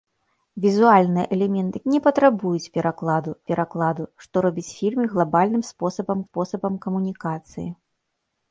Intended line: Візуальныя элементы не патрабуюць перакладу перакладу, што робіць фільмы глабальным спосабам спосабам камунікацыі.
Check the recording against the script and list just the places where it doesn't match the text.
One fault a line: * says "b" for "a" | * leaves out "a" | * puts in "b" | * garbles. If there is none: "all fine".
all fine